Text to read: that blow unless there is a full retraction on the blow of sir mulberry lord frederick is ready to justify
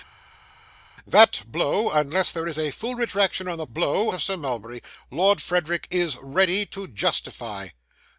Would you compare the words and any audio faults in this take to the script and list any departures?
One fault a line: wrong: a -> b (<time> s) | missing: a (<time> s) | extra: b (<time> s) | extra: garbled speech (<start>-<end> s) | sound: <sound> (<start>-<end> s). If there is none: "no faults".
no faults